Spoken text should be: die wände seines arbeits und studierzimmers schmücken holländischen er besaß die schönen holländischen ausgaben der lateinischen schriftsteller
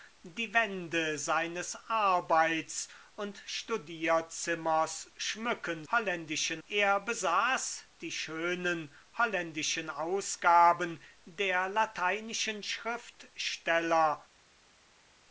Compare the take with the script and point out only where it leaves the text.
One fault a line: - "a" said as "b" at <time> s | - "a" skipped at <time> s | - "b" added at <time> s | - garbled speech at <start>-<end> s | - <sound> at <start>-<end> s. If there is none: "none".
none